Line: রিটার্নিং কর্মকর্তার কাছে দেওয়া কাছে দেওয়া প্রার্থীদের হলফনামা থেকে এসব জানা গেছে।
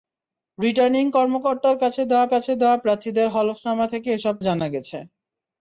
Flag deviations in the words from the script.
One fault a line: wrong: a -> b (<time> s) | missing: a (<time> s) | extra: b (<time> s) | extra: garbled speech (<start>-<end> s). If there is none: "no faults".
no faults